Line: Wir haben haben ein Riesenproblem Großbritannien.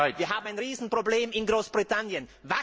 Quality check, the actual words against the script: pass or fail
fail